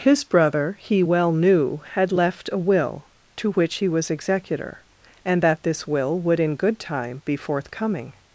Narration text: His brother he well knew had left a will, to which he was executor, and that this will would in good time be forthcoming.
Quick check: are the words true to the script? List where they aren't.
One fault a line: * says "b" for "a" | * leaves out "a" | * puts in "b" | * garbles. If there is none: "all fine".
all fine